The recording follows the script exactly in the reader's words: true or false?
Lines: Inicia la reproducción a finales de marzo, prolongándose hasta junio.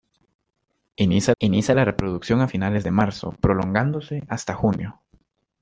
false